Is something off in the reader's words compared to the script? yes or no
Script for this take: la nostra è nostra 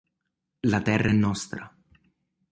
yes